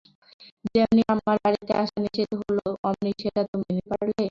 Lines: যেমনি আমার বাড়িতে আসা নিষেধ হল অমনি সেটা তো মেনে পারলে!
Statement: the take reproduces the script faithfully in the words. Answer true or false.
true